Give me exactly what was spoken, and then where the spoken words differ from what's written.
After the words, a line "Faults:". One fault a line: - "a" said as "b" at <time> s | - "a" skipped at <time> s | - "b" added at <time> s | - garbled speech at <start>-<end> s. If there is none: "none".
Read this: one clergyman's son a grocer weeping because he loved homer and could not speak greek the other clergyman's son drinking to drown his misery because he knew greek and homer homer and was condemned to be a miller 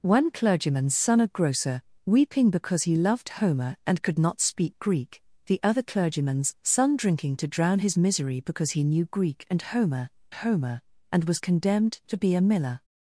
one clergyman's son a grocer weeping because he loved homer and could not speak greek the other clergyman's son drinking to drown his misery because he knew greek and homer homer and was condemned to be a miller
Faults:
none